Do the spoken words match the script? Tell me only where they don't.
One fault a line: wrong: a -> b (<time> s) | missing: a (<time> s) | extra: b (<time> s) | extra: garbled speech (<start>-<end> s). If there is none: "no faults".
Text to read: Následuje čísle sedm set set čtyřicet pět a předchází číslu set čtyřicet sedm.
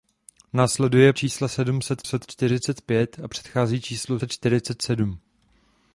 no faults